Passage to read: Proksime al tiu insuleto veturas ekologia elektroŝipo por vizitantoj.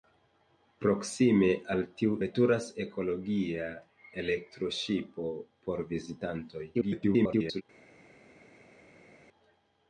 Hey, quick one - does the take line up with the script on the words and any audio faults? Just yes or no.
no